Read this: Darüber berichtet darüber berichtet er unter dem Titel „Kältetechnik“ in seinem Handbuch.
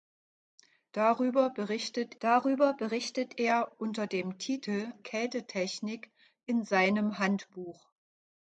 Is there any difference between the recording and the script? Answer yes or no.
no